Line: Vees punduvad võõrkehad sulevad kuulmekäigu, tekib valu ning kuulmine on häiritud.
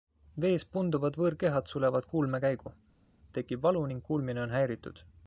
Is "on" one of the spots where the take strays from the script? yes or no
no